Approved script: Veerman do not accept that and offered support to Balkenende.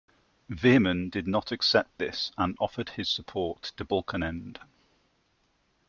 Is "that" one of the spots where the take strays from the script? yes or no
yes